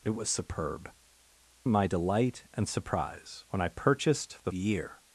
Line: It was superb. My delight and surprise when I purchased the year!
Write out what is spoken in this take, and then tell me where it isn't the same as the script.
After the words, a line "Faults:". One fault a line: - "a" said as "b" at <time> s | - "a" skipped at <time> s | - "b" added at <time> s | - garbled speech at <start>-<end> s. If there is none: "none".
It was superb. My delight and surprise when I purchased the year!
Faults:
none